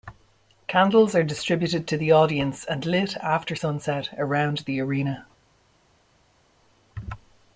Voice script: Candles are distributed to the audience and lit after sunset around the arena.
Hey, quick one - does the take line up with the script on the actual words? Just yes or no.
yes